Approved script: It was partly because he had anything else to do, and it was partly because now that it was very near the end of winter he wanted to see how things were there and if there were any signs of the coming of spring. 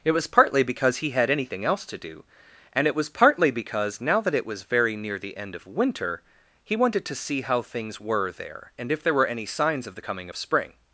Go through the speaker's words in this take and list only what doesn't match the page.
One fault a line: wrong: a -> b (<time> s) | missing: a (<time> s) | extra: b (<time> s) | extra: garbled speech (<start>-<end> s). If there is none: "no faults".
no faults